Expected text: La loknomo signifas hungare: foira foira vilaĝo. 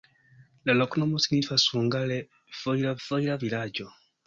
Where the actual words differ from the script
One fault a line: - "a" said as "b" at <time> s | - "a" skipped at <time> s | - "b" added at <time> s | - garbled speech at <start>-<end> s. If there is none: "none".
none